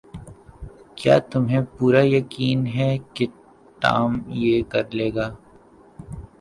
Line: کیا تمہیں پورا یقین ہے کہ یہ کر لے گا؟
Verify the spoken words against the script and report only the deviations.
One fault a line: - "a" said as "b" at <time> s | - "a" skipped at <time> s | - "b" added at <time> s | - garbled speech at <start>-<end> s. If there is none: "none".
- "ٹام" added at 3.8 s